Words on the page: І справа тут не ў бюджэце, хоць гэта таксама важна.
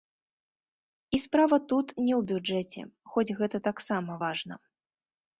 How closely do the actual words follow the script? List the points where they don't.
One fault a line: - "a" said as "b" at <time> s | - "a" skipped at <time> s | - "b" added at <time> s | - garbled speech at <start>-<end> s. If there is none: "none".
none